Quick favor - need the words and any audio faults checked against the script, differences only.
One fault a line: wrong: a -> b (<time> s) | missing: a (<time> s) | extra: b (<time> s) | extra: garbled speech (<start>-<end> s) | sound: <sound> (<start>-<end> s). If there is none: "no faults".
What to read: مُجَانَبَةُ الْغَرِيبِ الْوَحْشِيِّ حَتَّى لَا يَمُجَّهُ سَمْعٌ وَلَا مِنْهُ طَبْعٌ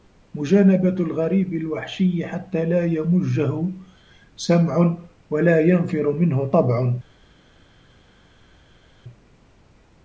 extra: يَنْفِرُ (5.6 s)